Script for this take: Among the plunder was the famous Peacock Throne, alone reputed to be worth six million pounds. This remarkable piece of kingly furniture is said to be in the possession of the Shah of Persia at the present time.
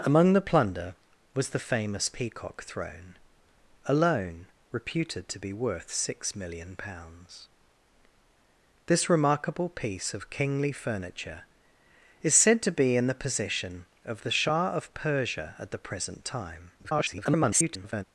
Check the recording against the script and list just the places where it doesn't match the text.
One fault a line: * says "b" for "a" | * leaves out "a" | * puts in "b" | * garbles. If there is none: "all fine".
* garbles